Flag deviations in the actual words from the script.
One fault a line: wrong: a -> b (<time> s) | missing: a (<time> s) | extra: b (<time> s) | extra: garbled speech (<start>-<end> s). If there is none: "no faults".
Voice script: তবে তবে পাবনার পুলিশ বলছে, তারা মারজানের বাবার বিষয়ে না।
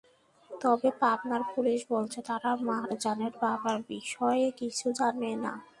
missing: তবে (0.9 s)
extra: কিছু জানে (4.6 s)